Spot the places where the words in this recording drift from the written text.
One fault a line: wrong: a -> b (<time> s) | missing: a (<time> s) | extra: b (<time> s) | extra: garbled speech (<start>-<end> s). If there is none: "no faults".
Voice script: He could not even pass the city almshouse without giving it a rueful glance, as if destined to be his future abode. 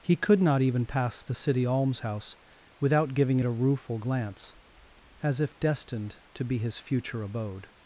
no faults